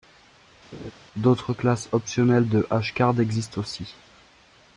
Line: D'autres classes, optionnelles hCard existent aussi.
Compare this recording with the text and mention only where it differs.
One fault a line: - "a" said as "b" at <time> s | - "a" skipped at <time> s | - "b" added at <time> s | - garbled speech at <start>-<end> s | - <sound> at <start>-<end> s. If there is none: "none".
- laugh at 0.7-0.9 s
- "de" added at 2.5 s